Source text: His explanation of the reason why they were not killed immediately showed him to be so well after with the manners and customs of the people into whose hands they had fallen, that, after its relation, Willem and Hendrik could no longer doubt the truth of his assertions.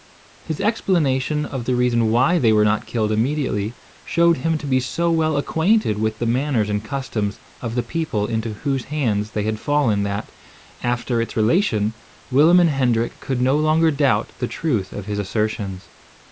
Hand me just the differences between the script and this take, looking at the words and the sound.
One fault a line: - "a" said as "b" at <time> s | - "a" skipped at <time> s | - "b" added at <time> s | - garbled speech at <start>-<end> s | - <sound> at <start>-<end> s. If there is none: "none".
- "after" said as "acquainted" at 5.4 s